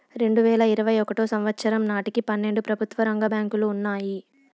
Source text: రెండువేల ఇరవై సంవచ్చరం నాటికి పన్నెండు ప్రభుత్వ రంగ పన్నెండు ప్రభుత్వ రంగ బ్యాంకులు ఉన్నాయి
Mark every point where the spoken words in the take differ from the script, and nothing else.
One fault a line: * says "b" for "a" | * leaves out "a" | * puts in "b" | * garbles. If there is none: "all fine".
* puts in "ఒకటో"
* leaves out "పన్నెండు ప్రభుత్వ రంగ"